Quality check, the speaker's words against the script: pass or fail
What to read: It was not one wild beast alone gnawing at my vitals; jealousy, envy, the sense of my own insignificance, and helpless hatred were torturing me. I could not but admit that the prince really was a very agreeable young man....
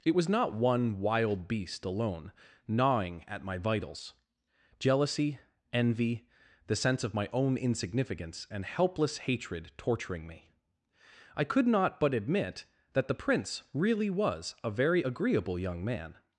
fail